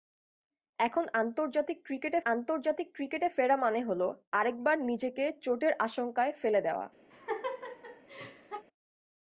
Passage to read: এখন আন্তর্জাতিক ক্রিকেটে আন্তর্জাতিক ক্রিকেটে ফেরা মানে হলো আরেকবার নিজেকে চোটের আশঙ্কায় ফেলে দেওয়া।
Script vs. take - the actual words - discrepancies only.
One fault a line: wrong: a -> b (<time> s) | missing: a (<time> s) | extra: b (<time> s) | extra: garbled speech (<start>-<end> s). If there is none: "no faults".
no faults